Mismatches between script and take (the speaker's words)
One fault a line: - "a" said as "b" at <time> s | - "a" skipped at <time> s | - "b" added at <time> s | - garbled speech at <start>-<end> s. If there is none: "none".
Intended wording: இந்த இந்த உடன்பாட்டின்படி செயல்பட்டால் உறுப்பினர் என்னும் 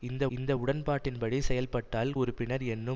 none